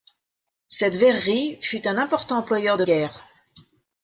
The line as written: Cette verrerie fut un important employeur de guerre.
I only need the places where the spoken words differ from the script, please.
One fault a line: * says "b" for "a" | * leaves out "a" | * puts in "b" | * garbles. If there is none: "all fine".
all fine